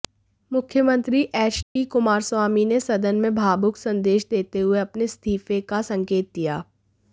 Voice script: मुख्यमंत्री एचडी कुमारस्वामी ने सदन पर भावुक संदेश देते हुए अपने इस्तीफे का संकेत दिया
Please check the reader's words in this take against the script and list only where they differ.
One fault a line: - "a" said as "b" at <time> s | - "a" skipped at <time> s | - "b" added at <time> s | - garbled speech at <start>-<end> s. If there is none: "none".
- "पर" said as "में" at 3.2 s